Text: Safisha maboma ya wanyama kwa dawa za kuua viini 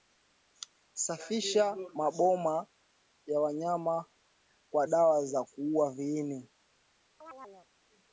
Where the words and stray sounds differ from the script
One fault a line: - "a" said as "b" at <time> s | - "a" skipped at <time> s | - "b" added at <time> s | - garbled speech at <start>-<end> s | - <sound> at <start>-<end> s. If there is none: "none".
- chirp at 7.2-7.7 s